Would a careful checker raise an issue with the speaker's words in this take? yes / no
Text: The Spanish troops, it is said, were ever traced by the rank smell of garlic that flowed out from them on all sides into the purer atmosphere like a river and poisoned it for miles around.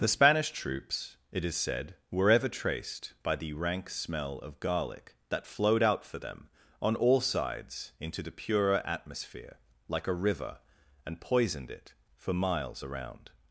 yes